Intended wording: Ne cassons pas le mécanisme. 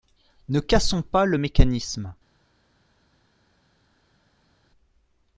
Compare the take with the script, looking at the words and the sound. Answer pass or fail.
pass